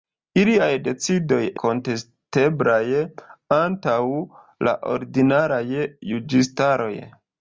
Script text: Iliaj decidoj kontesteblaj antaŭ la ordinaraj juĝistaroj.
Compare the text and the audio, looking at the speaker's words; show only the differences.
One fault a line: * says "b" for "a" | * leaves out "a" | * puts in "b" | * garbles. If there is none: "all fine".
all fine